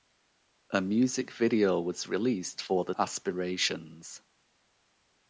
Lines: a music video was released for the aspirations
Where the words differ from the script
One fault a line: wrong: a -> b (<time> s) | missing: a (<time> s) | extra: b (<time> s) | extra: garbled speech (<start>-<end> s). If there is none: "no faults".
no faults